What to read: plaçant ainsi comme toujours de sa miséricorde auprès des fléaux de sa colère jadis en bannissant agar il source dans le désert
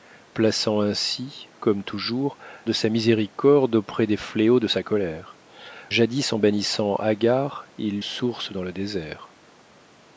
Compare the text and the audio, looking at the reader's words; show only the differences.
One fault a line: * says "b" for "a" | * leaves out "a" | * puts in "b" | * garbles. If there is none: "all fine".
all fine